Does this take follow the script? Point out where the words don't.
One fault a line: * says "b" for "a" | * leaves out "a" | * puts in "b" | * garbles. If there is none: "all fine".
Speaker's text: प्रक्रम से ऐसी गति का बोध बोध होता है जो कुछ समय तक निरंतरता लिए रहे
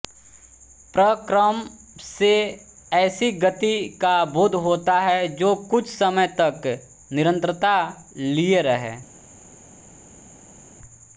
* leaves out "बोध"